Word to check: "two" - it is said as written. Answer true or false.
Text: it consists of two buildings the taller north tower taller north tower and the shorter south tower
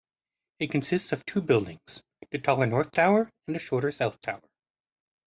true